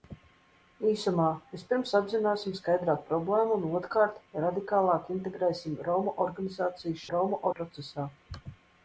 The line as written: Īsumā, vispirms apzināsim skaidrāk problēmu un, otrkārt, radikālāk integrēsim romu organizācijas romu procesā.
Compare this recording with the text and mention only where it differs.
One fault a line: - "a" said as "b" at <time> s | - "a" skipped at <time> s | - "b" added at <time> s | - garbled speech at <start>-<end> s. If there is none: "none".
none